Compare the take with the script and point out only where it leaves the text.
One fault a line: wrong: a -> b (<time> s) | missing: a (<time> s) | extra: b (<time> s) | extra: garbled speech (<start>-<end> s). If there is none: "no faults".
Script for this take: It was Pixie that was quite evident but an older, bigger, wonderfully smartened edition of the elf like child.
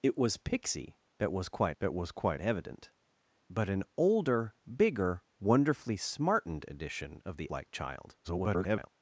extra: that was quite (1.8 s)
missing: elf (7.5 s)
extra: garbled speech (8.2-8.9 s)